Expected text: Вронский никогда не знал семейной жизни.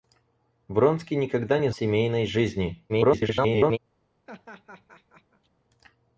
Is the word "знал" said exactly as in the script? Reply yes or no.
no